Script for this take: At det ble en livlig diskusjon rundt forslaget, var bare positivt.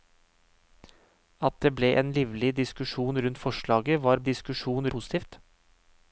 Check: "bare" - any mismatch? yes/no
yes